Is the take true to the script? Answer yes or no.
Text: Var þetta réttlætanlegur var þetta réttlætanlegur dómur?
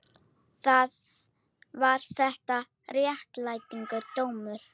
no